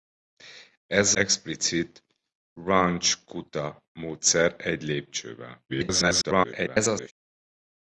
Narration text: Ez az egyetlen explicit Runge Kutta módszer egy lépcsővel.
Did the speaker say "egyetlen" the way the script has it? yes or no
no